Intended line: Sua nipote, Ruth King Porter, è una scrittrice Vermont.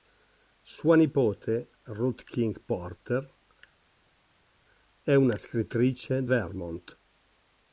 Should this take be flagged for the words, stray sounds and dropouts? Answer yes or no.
no